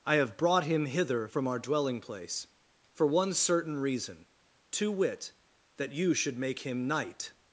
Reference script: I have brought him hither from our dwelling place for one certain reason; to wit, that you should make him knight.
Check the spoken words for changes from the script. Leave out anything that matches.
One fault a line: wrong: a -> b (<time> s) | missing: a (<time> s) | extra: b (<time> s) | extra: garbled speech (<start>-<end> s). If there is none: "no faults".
no faults